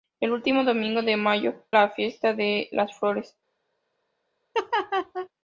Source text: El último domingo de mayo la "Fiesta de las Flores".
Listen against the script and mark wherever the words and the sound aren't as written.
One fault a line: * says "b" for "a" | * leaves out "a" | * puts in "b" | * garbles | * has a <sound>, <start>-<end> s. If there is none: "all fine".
* has a laugh, 4.5-5.3 s